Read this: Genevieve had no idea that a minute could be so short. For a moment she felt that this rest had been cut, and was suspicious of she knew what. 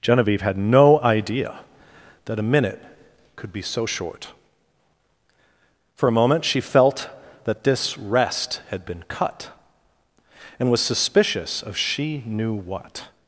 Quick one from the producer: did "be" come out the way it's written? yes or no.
yes